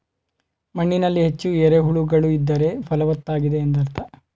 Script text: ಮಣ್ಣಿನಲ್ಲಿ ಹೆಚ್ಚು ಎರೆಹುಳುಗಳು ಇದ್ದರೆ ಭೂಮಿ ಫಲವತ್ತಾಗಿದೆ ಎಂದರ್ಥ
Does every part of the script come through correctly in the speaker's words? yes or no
no